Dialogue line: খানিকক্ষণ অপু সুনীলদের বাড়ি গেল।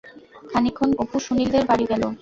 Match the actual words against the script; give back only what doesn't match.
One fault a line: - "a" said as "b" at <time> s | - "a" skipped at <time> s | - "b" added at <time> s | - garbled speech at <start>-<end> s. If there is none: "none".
none